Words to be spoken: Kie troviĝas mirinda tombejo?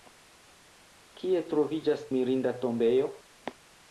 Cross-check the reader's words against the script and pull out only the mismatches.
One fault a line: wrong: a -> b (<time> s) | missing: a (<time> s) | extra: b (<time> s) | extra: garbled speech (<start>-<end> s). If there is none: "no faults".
no faults